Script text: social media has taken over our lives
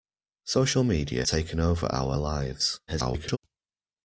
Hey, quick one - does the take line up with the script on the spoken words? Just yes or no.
no